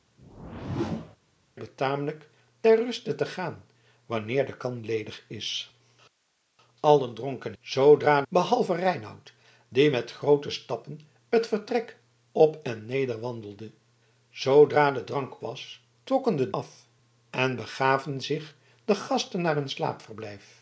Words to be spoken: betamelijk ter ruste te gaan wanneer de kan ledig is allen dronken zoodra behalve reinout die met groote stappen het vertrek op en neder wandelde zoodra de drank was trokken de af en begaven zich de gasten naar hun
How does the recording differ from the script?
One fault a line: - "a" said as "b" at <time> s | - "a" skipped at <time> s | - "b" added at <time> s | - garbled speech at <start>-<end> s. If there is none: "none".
none